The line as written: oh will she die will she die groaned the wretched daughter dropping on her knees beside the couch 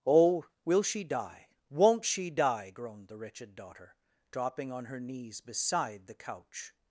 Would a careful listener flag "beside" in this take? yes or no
no